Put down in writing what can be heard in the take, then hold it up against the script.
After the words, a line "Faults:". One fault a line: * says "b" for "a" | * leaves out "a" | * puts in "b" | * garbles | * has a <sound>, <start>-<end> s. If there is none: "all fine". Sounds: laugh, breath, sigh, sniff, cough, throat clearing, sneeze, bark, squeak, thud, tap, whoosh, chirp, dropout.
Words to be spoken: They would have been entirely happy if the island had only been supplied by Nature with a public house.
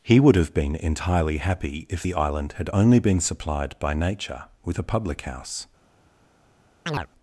He would have been entirely happy if the island had only been supplied by Nature with a public house.
Faults:
* says "He" for "They"
* has a chirp, 6.9-7.1 s